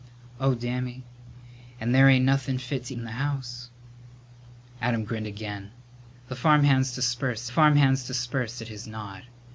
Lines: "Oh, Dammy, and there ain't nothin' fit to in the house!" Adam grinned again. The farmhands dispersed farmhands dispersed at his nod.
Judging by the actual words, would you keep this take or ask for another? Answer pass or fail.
pass